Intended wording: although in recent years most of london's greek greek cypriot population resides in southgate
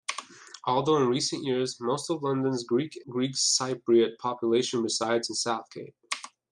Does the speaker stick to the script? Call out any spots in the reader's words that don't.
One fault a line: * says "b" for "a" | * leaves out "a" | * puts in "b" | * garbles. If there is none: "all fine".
all fine